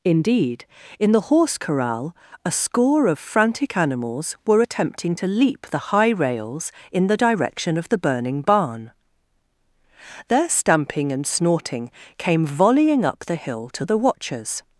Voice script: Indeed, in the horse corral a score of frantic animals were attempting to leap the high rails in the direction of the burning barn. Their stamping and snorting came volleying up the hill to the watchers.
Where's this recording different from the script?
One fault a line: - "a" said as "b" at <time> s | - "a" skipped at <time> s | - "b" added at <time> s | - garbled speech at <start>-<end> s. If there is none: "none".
none